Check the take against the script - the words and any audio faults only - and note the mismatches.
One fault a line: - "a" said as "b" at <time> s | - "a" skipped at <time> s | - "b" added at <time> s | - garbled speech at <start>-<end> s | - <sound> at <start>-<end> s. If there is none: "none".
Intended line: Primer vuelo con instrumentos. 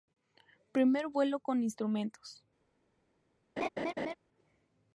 - laugh at 3.6-4.1 s